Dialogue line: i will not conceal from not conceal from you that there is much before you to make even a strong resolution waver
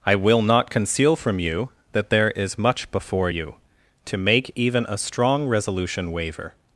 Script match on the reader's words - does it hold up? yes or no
no